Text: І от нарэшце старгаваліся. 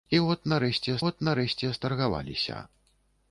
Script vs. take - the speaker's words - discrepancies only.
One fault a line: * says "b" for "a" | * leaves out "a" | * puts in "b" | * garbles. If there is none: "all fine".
* puts in "от нарэшце"